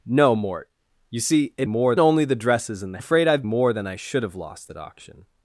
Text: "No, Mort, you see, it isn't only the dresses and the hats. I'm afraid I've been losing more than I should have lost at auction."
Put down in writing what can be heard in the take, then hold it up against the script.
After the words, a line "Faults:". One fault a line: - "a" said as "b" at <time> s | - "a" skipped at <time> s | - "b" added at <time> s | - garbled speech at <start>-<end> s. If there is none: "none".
"No, Mort, you see, it more only the dresses and the afraid I've more than I should have lost at auction."
Faults:
- "isn't" said as "more" at 1.7 s
- "hats I'm" skipped at 3.0 s
- "been losing" skipped at 3.4 s